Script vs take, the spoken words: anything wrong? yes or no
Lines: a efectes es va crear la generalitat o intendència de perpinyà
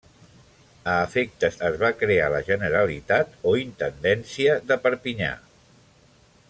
no